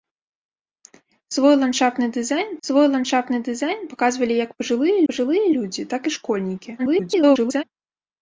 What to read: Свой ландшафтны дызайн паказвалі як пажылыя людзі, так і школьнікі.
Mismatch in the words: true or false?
true